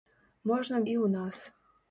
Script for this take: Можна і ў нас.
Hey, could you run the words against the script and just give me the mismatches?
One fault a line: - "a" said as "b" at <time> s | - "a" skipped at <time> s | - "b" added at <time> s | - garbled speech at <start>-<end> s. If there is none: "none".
none